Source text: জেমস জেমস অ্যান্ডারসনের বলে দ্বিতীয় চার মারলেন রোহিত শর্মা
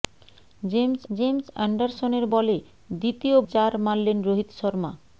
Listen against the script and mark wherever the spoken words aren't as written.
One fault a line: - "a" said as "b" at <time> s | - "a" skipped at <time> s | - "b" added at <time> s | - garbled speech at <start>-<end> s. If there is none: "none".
none